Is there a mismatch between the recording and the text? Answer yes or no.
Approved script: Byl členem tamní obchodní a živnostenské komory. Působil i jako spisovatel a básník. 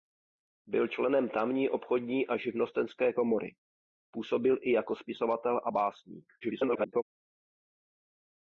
yes